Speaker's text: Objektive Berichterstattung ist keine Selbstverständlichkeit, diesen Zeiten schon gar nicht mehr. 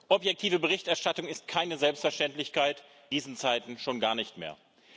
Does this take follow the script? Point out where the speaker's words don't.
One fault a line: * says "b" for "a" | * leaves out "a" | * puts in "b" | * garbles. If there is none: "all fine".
all fine